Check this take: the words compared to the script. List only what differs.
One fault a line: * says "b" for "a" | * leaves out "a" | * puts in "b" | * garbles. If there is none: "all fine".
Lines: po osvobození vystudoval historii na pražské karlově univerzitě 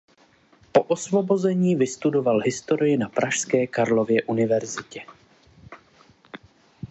all fine